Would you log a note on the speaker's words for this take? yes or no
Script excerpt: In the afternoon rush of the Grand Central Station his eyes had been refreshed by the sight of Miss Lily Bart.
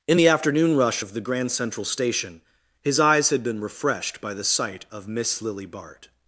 no